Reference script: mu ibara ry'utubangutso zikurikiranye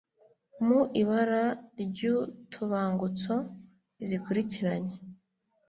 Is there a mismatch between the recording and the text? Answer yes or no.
no